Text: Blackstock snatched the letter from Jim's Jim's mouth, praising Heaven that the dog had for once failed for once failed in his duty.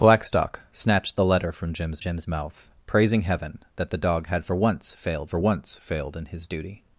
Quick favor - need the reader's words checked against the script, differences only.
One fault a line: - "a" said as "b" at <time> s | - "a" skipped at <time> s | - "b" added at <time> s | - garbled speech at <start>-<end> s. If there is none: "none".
none